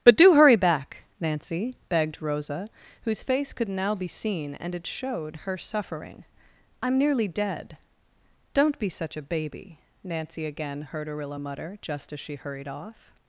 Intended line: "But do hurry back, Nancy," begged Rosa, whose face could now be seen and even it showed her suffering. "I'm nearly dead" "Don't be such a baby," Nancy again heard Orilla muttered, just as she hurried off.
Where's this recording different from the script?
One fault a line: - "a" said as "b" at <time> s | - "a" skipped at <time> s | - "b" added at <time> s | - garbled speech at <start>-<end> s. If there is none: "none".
- "even" skipped at 4.7 s
- "muttered" said as "mutter" at 11.4 s